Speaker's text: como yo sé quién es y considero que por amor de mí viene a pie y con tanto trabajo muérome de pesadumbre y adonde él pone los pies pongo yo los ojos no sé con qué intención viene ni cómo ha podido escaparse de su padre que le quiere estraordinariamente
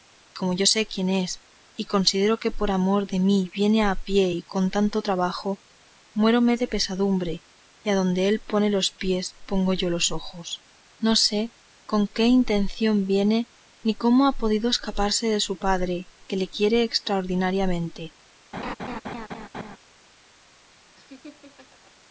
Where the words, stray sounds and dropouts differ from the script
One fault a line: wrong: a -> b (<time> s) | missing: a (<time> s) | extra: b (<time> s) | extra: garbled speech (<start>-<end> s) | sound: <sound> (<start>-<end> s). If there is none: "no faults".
sound: laugh (18.5-19.8 s)
sound: laugh (21.0-21.9 s)